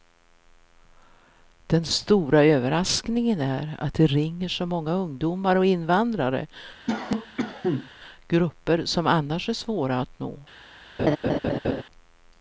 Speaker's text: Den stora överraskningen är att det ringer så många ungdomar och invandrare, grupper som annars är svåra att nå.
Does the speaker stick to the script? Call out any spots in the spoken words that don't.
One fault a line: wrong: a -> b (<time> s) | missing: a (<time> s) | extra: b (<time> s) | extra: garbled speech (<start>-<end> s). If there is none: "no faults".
no faults